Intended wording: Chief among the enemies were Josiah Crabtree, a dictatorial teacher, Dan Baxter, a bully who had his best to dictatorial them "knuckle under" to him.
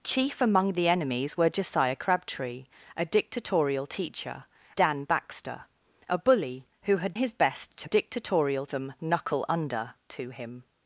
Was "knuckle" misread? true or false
false